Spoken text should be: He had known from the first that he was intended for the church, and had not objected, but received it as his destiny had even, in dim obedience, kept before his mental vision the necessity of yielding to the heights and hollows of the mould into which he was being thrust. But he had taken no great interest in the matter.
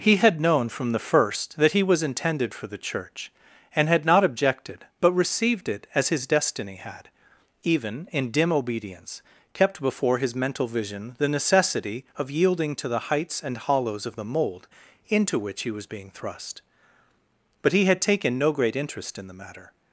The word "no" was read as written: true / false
true